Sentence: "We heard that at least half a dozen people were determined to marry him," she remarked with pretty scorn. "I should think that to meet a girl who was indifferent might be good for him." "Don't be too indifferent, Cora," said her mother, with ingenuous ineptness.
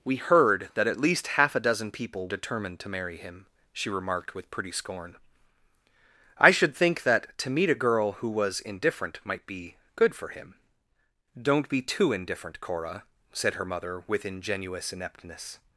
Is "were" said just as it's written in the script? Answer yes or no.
no